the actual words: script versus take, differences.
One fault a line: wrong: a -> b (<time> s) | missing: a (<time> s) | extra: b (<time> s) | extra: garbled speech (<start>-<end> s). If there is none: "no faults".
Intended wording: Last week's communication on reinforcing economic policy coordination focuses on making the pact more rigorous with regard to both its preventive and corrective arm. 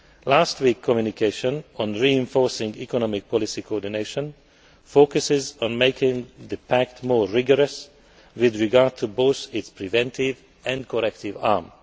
no faults